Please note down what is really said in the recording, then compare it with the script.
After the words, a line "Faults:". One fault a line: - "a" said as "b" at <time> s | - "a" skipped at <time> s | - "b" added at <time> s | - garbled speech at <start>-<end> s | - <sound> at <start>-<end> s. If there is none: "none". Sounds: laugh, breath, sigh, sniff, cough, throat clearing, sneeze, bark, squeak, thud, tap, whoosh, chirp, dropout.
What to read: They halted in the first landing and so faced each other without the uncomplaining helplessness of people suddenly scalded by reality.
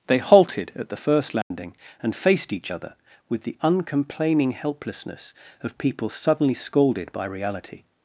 They halted at the first landing and faced each other with the uncomplaining helplessness of people suddenly scalded by reality.
Faults:
- "in" said as "at" at 0.8 s
- dropout at 1.4-1.5 s
- "so" skipped at 2.2 s
- "without" said as "with" at 3.3 s